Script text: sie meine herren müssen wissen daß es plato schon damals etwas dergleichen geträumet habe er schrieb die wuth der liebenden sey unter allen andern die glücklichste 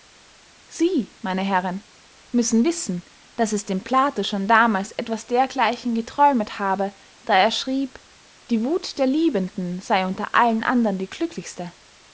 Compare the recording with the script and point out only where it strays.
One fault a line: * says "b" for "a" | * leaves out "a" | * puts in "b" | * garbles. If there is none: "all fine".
* puts in "dem"
* puts in "da"